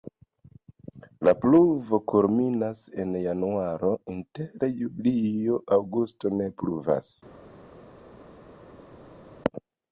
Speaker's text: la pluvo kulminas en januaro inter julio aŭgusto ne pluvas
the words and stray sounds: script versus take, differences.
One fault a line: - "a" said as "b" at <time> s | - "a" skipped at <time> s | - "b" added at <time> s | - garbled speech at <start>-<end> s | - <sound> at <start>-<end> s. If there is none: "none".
none